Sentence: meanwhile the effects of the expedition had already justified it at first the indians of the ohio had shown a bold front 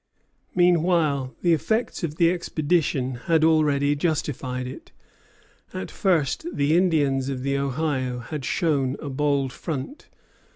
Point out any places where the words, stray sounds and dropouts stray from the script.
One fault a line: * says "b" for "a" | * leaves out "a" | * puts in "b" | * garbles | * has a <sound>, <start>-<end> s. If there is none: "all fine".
all fine